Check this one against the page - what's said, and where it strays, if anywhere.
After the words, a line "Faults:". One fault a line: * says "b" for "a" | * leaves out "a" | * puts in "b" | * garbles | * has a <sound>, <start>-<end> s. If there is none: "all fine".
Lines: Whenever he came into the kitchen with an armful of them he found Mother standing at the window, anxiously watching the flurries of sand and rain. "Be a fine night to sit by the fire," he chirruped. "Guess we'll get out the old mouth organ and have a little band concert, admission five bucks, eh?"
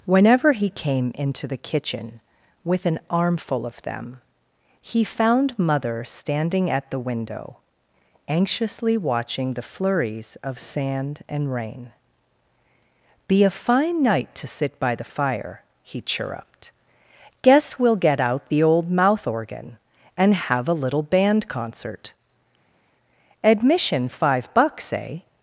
Whenever he came into the kitchen with an armful of them he found Mother standing at the window, anxiously watching the flurries of sand and rain. "Be a fine night to sit by the fire," he chirruped. "Guess we'll get out the old mouth organ and have a little band concert, admission five bucks, eh?"
Faults:
all fine